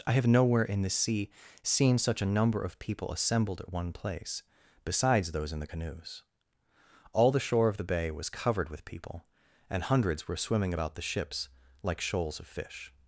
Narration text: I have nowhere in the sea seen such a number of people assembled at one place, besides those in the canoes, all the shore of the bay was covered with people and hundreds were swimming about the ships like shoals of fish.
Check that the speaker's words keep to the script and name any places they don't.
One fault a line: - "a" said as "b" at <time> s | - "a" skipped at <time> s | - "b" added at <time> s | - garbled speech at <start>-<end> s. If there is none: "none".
none